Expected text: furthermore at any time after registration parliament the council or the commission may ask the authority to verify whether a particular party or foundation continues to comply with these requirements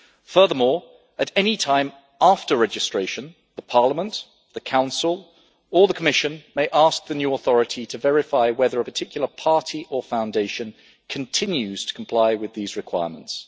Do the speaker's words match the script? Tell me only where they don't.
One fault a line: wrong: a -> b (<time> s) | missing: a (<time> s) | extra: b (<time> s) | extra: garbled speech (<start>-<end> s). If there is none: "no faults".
extra: new (7.1 s)